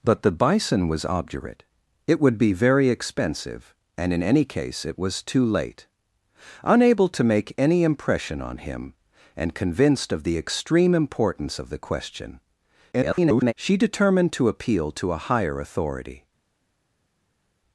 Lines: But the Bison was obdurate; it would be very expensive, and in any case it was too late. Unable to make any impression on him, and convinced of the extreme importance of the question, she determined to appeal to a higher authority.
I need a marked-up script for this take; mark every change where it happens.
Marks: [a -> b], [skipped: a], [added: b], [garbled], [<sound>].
But the Bison was obdurate; it would be very expensive, and in any case it was too late. Unable to make any impression on him, and convinced of the extreme importance of the question, [garbled] she determined to appeal to a higher authority.